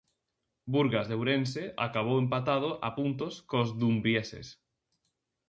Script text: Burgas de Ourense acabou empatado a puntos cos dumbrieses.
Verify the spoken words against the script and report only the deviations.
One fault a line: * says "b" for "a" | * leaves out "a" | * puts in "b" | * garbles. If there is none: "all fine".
all fine